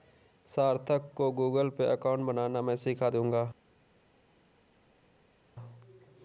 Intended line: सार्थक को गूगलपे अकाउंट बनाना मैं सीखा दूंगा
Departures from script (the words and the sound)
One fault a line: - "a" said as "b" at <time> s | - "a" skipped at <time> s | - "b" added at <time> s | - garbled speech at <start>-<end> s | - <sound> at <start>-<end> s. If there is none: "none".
none